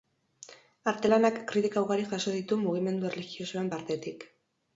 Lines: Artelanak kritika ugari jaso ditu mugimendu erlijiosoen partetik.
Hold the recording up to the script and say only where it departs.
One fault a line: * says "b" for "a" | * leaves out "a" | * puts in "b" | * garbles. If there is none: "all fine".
all fine